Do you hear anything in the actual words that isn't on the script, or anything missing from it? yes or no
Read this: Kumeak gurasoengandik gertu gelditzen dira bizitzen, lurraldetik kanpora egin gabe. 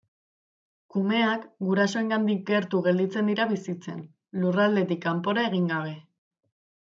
no